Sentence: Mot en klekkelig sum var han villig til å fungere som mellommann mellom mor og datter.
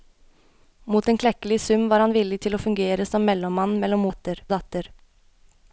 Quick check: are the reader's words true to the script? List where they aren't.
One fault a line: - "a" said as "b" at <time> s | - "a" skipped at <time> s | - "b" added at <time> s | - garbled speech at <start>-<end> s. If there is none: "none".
- "mor" said as "datter" at 4.1 s